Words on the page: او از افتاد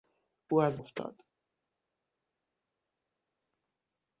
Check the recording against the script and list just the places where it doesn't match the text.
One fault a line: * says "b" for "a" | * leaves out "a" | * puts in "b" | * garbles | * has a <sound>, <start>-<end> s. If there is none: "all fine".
all fine